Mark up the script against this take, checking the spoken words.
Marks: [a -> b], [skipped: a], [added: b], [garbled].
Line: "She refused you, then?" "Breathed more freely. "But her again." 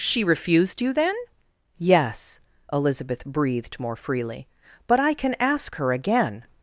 "She refused you, then?" [added: Yes Elizabeth] "Breathed more freely. "But [added: I can ask] her again."